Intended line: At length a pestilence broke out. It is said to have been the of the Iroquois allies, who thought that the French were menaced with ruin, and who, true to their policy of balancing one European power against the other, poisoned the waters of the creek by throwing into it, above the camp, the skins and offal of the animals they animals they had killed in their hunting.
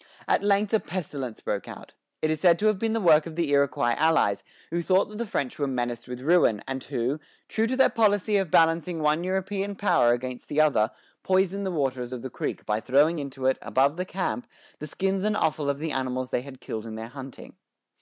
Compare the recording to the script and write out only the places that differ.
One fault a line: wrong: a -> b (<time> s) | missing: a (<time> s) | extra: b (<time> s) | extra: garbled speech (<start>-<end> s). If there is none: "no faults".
extra: work (3.0 s)
missing: animals they (16.4 s)